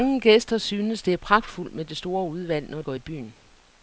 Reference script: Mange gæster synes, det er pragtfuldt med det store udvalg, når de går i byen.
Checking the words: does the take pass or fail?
fail